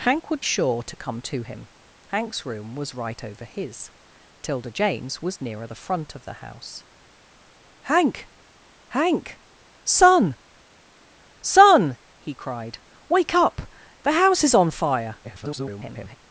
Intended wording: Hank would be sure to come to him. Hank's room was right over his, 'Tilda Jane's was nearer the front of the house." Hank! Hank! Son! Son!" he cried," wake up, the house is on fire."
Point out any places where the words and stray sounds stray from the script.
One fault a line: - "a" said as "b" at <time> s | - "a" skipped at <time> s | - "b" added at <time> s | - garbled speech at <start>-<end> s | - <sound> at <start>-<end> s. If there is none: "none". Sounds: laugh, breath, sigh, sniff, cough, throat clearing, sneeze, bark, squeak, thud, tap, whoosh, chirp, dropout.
- "be" skipped at 0.4 s
- garbled speech at 15.2-16.2 s